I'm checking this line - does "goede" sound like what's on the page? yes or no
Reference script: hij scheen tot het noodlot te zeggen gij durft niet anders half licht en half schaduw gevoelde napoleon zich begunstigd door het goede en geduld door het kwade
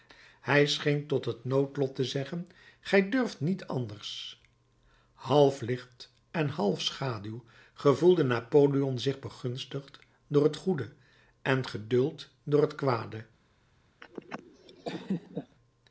yes